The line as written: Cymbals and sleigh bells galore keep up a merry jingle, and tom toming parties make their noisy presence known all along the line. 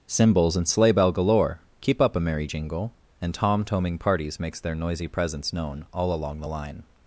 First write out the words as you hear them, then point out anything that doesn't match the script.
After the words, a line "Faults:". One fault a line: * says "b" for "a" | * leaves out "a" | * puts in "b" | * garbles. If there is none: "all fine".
Cymbals and sleigh bell galore keep up a merry jingle, and tom toming parties makes their noisy presence known all along the line.
Faults:
* says "bell" for "bells"
* says "makes" for "make"